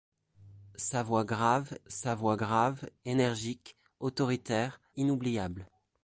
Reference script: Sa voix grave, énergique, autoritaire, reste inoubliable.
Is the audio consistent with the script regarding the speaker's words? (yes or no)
no